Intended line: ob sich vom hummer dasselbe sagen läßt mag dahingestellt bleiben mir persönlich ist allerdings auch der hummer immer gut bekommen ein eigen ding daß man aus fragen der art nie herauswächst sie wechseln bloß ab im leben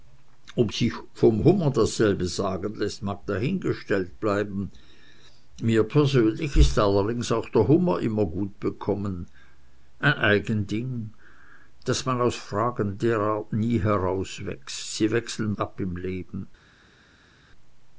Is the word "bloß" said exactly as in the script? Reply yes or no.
no